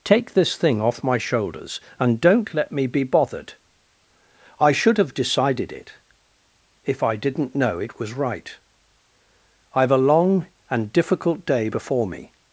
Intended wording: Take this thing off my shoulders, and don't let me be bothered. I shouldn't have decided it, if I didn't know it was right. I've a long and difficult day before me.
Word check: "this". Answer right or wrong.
right